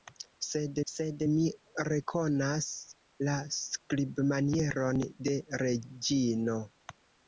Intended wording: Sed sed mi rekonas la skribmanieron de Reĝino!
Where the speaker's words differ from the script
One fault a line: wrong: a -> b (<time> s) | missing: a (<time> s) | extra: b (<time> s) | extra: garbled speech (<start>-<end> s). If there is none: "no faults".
no faults